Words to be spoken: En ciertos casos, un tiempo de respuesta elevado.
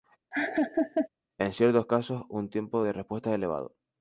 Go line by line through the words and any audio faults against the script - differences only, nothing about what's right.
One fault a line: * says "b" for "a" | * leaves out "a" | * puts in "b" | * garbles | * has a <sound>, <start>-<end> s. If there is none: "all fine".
* has a laugh, 0.3-1.1 s